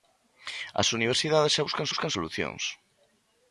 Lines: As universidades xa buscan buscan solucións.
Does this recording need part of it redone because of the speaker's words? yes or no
no